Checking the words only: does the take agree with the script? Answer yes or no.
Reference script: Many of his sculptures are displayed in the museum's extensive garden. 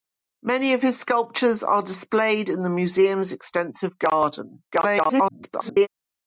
no